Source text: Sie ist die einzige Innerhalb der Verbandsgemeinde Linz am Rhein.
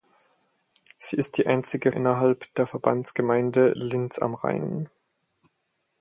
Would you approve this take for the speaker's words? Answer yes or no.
yes